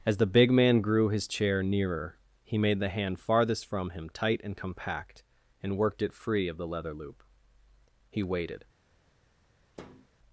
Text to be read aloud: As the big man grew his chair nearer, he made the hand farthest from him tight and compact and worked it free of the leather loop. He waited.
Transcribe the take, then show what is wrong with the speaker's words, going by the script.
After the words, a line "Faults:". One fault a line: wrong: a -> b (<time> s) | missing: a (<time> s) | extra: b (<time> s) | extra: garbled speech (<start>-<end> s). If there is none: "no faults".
As the big man grew his chair nearer, he made the hand farthest from him tight and compact and worked it free of the leather loop. He waited.
Faults:
no faults